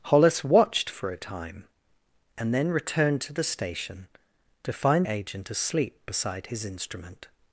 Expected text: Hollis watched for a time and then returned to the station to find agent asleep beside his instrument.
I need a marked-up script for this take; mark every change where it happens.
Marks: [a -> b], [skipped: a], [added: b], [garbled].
Hollis watched for a time and then returned to the station to find agent asleep beside his instrument.